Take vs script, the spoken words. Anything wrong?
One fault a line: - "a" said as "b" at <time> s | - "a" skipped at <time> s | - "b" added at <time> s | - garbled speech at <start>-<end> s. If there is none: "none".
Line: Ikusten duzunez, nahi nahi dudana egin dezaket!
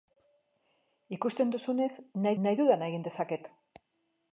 none